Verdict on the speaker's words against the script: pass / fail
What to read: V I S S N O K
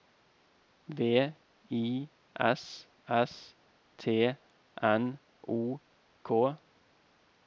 fail